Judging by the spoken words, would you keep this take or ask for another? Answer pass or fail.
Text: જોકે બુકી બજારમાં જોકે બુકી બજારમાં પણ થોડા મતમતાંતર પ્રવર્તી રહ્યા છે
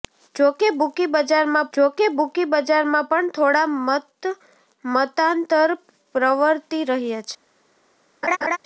pass